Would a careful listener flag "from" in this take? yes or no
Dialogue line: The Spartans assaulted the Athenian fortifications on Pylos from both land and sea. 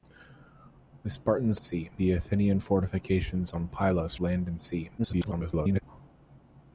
yes